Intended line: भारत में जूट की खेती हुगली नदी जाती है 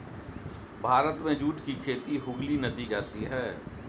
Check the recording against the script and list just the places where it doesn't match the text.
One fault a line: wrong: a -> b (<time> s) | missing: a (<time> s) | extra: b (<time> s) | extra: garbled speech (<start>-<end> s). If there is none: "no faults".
no faults